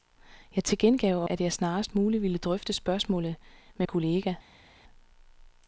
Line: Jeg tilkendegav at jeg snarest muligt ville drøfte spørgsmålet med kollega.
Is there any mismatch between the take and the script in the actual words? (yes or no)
no